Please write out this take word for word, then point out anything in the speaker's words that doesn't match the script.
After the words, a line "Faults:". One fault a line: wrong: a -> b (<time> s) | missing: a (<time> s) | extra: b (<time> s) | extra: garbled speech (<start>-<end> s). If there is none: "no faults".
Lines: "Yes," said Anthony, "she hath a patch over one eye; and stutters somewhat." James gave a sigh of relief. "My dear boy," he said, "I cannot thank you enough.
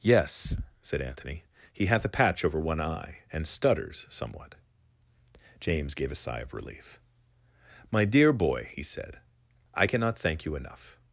"Yes," said Anthony, "he hath a patch over one eye; and stutters somewhat." James gave a sigh of relief. "My dear boy," he said, "I cannot thank you enough.
Faults:
wrong: she -> he (1.7 s)